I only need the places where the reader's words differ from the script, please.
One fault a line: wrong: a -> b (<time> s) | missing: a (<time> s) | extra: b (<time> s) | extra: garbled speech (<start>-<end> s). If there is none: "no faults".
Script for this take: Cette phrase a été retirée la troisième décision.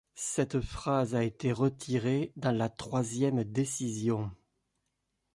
extra: dans (2.4 s)